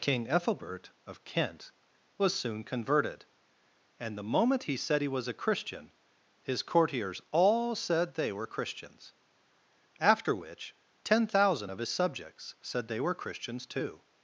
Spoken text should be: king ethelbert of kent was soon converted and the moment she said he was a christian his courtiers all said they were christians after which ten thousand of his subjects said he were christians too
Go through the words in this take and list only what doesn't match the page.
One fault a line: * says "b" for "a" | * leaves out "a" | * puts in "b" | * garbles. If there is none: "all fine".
* says "he" for "she"
* says "they" for "he"